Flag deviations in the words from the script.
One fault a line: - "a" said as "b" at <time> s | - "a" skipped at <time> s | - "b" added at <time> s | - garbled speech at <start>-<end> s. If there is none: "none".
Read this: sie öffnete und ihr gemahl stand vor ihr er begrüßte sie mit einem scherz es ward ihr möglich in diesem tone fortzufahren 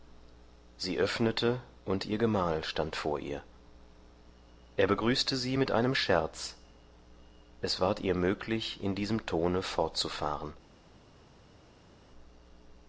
none